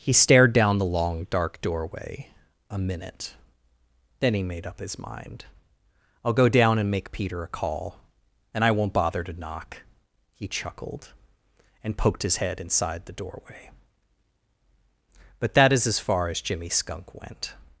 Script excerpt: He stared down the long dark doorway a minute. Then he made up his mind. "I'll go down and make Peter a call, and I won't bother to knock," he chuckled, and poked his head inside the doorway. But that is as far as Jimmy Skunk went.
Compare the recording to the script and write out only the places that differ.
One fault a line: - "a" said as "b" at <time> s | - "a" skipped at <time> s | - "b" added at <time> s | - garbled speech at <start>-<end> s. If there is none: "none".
none